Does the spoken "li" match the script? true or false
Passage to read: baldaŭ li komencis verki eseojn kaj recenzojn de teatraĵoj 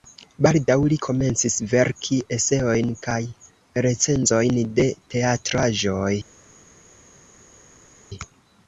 true